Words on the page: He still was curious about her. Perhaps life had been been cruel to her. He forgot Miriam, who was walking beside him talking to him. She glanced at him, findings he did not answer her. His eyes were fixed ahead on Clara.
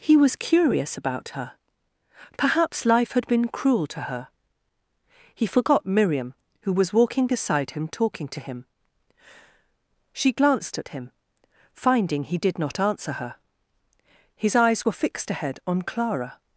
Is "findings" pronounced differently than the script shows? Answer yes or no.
yes